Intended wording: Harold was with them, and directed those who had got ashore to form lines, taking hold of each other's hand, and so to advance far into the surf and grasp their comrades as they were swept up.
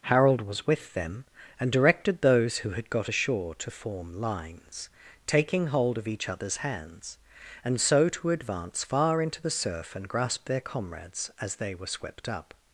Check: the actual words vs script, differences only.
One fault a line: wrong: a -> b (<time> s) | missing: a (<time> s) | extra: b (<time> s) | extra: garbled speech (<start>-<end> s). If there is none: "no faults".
wrong: hand -> hands (6.6 s)